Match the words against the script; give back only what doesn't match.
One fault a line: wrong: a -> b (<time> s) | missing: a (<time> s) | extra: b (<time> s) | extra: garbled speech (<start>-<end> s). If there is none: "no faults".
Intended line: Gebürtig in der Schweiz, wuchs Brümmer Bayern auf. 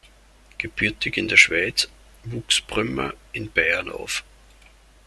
extra: in (3.3 s)